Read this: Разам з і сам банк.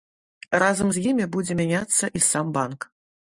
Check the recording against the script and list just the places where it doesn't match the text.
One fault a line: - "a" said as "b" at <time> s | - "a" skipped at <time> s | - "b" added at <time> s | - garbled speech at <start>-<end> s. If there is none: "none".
- "імі будзе мяняцца" added at 1.1 s